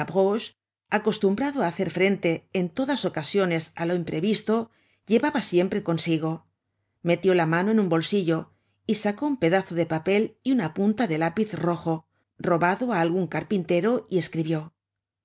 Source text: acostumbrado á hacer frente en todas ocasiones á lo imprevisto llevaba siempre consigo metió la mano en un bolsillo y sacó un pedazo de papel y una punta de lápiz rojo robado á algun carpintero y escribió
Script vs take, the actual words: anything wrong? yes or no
no